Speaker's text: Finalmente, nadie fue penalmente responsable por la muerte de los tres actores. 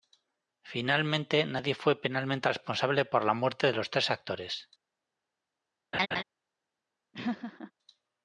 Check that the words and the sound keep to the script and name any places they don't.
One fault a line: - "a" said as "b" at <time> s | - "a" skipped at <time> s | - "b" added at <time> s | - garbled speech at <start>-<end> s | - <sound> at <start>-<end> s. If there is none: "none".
- laugh at 5.9-6.2 s
- laugh at 7.1-7.7 s